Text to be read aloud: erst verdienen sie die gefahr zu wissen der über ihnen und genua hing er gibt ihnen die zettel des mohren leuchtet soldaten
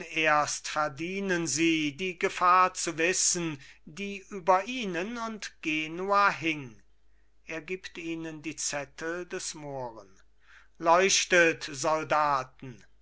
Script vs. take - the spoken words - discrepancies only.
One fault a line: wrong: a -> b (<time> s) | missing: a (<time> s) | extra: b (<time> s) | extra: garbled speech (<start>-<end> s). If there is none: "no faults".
wrong: der -> die (3.8 s)